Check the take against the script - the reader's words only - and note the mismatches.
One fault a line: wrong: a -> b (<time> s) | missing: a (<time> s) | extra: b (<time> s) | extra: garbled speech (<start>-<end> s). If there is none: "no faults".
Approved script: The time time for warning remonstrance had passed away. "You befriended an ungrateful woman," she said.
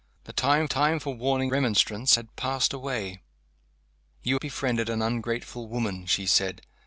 no faults